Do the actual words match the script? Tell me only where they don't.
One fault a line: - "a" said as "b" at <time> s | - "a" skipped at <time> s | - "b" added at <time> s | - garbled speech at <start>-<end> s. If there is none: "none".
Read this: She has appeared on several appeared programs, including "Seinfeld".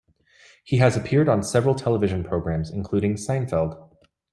- "She" said as "He" at 0.6 s
- "appeared" said as "television" at 1.8 s